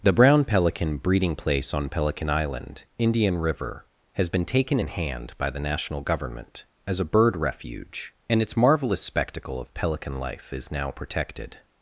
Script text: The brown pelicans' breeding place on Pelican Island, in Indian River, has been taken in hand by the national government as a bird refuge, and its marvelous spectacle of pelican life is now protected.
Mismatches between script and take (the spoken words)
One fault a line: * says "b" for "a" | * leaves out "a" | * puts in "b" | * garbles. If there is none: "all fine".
* says "pelican" for "pelicans"
* leaves out "in"